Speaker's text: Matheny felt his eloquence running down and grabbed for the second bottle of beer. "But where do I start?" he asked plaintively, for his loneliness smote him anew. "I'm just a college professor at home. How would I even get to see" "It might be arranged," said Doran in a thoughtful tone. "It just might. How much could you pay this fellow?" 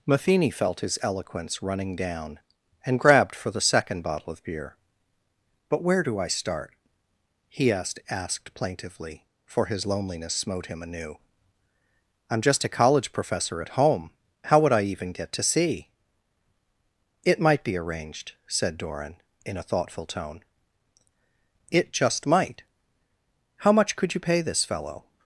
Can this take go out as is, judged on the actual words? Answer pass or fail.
fail